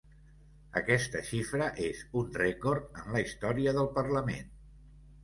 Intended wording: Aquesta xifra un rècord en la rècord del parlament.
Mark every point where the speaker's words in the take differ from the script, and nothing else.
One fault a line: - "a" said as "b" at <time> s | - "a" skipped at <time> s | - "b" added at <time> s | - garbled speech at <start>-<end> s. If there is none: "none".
- "és" added at 1.9 s
- "rècord" said as "història" at 3.3 s